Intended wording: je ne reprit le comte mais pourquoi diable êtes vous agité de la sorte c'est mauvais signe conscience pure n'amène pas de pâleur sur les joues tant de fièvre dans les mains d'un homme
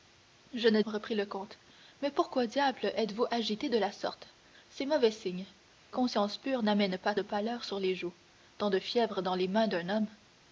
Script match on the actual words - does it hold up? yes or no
yes